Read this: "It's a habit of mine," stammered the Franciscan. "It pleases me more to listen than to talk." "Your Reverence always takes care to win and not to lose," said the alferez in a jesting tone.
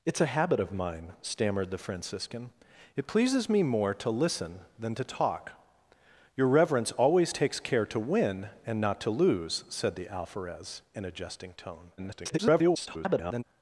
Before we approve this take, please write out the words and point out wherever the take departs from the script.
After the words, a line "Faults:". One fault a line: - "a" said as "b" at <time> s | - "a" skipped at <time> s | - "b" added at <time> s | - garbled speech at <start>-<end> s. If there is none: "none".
"It's a habit of mine," stammered the Franciscan. "It pleases me more to listen than to talk." "Your Reverence always takes care to win and not to lose," said the alferez in a jesting tone. [garbled]
Faults:
- garbled speech at 12.0-13.4 s